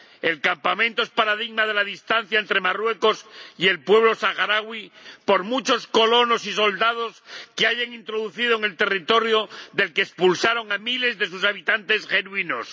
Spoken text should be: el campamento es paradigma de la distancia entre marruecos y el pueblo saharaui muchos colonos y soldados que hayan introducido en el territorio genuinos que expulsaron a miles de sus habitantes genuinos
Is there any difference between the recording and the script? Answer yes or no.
yes